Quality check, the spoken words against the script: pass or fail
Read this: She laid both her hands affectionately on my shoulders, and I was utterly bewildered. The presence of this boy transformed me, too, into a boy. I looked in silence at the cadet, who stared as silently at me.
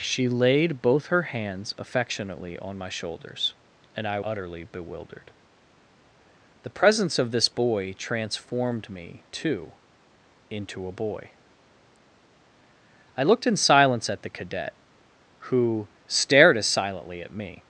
fail